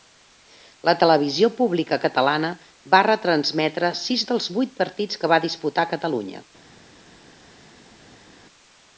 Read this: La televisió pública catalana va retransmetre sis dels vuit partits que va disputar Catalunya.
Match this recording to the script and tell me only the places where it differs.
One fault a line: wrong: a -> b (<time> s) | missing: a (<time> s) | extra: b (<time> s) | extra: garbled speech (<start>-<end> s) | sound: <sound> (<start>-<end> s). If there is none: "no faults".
no faults